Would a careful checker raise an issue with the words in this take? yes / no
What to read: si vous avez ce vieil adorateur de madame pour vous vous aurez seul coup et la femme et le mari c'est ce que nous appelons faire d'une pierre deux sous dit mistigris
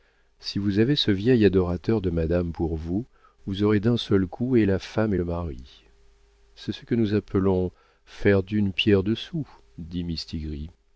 yes